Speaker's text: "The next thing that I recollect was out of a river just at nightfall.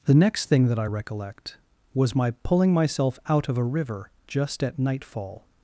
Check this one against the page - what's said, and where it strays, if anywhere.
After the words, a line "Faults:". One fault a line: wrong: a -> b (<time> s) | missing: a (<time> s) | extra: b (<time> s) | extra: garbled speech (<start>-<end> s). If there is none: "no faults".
"The next thing that I recollect was my pulling myself out of a river just at nightfall.
Faults:
extra: my pulling myself (2.2 s)